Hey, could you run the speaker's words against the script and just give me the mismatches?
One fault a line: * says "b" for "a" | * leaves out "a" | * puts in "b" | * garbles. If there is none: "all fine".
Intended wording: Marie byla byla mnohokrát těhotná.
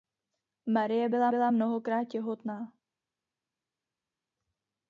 all fine